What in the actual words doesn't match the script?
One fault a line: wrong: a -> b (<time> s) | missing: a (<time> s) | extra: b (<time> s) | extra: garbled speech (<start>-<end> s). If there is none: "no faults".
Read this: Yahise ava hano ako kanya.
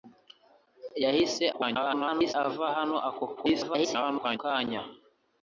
extra: garbled speech (1.5-2.3 s)
extra: garbled speech (3.4-4.4 s)